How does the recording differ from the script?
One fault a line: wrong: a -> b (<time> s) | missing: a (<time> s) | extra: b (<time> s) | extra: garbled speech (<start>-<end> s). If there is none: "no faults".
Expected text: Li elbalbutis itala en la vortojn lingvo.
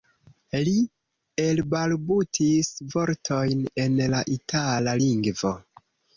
wrong: itala -> vortojn (2.9 s)
wrong: vortojn -> itala (4.4 s)